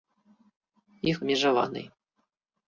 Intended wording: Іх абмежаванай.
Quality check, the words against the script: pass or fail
pass